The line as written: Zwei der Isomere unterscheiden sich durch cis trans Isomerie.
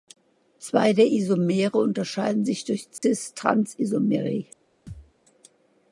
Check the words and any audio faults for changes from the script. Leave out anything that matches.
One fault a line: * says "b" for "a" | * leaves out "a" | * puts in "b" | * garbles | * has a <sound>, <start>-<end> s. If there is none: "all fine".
* has a dropout, 3.0-3.0 s
* has a thud, 4.9-5.1 s